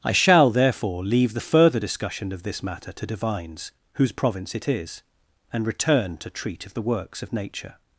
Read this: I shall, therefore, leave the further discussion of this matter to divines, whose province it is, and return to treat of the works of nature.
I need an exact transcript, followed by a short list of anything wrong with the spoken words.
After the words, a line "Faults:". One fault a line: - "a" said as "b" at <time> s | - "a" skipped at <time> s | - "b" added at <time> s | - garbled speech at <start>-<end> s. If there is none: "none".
I shall, therefore, leave the further discussion of this matter to divines, whose province it is, and return to treat of the works of nature.
Faults:
none